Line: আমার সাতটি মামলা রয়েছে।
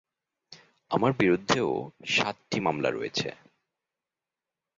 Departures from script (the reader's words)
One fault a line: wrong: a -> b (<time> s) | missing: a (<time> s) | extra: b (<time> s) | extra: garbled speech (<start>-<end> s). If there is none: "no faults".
extra: বিরুদ্ধেও (1.2 s)